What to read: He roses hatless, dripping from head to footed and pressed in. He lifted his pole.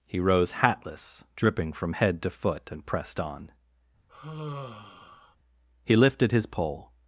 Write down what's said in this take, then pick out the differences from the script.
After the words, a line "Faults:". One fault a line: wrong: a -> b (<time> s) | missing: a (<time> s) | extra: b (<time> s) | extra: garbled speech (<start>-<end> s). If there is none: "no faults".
He rose hatless, dripping from head to foot and pressed on. He lifted his pole.
Faults:
wrong: roses -> rose (0.2 s)
wrong: footed -> foot (2.3 s)
wrong: in -> on (3.2 s)